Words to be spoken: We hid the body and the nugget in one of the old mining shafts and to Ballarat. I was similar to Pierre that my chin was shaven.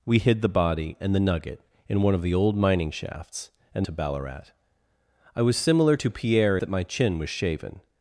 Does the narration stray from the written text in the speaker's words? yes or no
no